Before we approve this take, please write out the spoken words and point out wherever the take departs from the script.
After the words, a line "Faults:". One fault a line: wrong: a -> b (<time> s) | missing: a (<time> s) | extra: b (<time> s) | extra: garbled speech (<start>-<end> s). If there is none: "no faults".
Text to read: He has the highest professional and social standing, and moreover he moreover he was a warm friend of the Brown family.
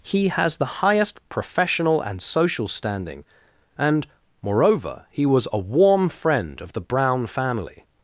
He has the highest professional and social standing, and moreover he was a warm friend of the Brown family.
Faults:
missing: moreover he (5.3 s)